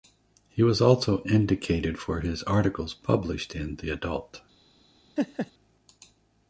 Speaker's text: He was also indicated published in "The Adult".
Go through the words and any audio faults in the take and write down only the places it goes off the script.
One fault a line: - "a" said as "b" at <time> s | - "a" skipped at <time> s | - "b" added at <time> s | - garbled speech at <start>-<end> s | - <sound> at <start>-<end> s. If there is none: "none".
- "for his articles" added at 2.0 s
- laugh at 5.2-5.5 s